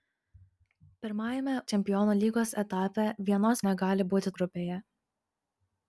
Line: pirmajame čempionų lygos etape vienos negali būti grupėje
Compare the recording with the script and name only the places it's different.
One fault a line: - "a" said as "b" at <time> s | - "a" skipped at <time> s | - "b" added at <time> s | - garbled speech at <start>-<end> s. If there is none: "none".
none